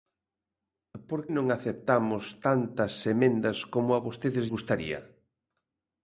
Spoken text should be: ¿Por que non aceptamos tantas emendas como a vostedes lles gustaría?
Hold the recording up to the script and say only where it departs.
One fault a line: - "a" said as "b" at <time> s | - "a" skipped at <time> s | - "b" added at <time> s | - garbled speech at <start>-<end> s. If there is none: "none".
- "que" skipped at 1.2 s
- "lles" skipped at 4.5 s